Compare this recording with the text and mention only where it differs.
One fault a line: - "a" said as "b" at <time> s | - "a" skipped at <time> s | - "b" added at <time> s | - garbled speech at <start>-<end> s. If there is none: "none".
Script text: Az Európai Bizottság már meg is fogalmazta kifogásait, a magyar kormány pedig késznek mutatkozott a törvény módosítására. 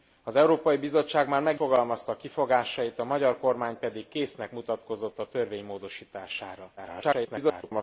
- "is" skipped at 1.6 s
- garbled speech at 6.8-7.8 s